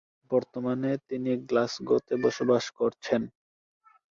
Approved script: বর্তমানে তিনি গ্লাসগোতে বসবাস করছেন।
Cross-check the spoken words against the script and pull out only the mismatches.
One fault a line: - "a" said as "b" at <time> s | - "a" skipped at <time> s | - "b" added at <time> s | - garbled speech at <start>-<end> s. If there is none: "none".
none